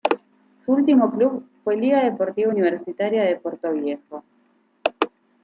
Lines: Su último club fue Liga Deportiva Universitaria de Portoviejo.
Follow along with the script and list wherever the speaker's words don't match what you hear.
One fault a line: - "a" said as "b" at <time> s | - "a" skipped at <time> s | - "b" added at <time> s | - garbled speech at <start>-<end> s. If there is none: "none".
none